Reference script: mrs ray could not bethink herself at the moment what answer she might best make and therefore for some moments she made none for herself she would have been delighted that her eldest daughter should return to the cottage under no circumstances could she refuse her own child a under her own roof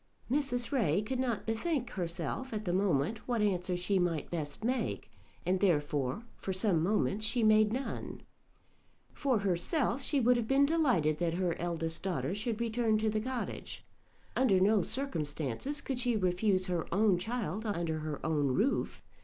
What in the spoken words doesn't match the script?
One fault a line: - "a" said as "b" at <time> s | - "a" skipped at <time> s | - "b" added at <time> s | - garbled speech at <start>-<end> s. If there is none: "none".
none